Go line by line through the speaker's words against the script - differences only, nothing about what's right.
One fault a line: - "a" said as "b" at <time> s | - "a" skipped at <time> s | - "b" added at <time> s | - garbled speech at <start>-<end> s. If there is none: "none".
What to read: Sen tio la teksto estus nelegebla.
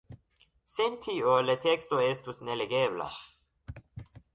none